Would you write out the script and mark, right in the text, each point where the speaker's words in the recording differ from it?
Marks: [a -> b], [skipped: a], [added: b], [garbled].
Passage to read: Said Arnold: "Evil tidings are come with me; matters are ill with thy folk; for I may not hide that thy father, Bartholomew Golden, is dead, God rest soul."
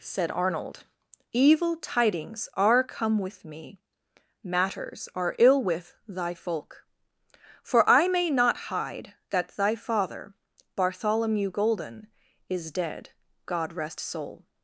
Said Arnold: "Evil tidings are come with me; matters are ill with thy folk; for I may not hide that thy father, Bartholomew Golden, is dead, God rest soul."